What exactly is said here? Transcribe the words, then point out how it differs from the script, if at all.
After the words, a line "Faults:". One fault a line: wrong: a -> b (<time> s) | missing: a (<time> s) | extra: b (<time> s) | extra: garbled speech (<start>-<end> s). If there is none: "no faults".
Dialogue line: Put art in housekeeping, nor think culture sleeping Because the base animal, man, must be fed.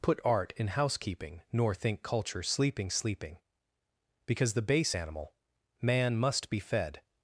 Put art in housekeeping, nor think culture sleeping sleeping Because the base animal, man, must be fed.
Faults:
extra: sleeping (2.9 s)